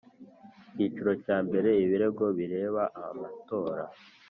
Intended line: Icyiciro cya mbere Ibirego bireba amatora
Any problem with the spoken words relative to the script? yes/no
no